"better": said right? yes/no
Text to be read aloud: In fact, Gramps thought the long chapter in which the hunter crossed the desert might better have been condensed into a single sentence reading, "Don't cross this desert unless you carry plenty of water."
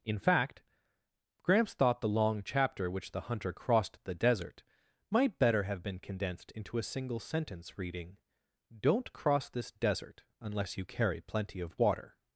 yes